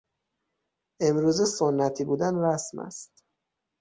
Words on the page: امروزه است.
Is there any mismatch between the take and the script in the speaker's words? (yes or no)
yes